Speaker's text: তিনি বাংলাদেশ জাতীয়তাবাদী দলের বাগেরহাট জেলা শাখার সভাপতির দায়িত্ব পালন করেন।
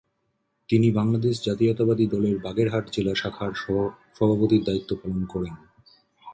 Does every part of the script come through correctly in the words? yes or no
yes